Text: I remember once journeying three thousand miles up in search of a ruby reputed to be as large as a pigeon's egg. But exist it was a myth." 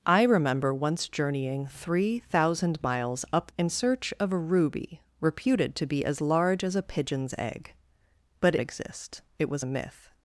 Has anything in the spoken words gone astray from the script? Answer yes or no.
no